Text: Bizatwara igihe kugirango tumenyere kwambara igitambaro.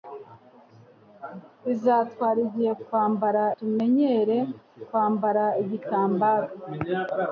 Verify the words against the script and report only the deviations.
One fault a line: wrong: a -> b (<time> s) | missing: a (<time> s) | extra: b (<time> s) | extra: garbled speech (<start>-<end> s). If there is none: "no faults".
wrong: kugirango -> kwambara (2.9 s)